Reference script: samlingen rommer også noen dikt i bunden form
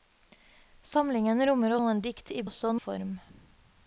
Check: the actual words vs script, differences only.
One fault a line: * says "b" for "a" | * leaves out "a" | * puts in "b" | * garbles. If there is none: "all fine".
* leaves out "også"
* says "også" for "bunden"